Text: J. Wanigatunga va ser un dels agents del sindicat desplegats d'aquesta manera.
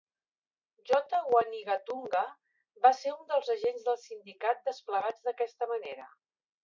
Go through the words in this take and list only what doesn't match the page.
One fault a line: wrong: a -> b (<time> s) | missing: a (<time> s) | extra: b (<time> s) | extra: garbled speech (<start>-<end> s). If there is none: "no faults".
no faults